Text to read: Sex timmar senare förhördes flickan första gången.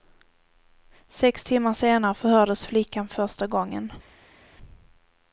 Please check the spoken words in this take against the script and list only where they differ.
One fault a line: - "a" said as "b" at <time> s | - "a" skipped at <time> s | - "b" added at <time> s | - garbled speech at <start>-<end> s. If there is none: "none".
none